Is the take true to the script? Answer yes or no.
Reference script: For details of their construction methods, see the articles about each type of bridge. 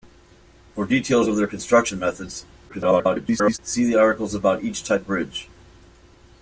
no